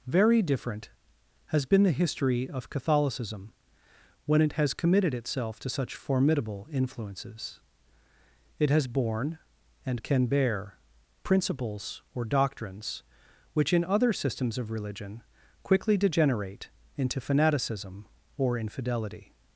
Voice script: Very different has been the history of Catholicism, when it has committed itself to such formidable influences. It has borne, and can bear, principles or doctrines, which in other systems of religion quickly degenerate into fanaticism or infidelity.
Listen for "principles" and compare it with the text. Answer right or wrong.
right